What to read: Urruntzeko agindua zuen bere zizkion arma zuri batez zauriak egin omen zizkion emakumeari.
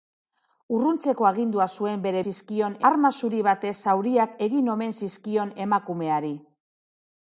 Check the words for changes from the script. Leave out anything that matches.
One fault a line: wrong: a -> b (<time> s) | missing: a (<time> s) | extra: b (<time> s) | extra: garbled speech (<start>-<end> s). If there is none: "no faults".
no faults